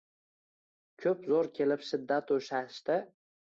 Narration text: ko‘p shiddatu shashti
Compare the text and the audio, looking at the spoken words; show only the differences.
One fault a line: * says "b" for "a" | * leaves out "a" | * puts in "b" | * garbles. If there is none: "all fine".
* puts in "zo‘r kelib"